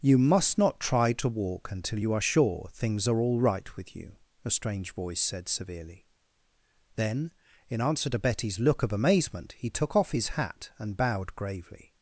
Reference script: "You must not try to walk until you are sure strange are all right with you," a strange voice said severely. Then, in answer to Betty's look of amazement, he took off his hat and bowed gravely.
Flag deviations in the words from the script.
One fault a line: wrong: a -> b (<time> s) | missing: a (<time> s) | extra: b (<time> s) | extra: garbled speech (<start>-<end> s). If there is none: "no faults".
wrong: strange -> things (2.7 s)